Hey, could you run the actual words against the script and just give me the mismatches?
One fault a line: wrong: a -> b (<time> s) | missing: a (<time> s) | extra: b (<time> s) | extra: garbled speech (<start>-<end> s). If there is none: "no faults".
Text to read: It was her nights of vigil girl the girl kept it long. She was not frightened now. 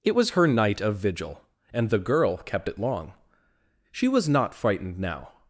wrong: nights -> night (0.5 s)
wrong: girl -> and (1.7 s)